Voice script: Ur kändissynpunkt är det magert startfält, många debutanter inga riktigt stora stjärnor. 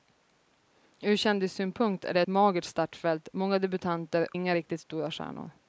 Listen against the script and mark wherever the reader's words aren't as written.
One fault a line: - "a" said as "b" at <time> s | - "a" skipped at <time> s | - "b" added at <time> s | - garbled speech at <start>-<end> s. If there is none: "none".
none